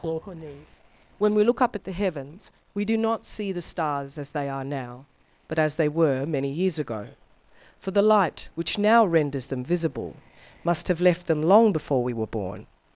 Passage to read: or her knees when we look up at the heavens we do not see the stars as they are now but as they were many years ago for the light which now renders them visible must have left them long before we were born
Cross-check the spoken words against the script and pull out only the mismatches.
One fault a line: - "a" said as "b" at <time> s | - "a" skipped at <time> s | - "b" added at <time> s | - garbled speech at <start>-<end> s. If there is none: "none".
none